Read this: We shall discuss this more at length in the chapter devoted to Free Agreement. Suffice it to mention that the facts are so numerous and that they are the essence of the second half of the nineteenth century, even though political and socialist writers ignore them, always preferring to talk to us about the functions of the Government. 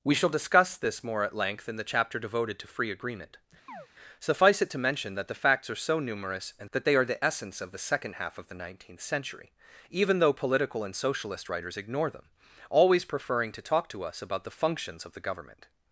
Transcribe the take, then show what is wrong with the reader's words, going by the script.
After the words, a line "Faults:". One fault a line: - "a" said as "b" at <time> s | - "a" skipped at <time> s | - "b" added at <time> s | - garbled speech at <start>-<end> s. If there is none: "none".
We shall discuss this more at length in the chapter devoted to Free Agreement. Suffice it to mention that the facts are so numerous and that they are the essence of the second half of the nineteenth century, even though political and socialist writers ignore them, always preferring to talk to us about the functions of the Government.
Faults:
none